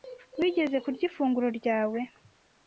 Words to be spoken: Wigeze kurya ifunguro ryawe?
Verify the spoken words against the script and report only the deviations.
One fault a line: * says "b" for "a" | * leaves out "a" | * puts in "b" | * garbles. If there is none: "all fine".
all fine